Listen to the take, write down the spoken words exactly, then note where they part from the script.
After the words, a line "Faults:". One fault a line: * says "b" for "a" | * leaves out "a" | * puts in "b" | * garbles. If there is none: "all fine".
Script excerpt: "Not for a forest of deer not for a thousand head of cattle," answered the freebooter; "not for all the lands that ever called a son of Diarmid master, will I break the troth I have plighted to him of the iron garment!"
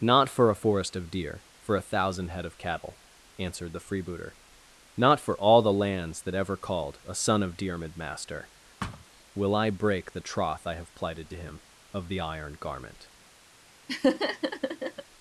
"Not for a forest of deer for a thousand head of cattle," answered the freebooter; "not for all the lands that ever called a son of Diarmid master, will I break the troth I have plighted to him of the iron garment!"
Faults:
* leaves out "not"